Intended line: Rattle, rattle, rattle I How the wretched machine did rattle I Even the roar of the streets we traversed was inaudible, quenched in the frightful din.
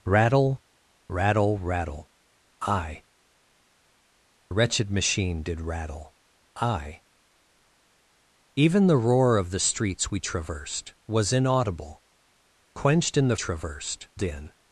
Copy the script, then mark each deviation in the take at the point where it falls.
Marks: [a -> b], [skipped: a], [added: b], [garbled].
Rattle, rattle, rattle I [skipped: How the] wretched machine did rattle I Even the roar of the streets we traversed was inaudible, quenched in the [frightful -> traversed] din.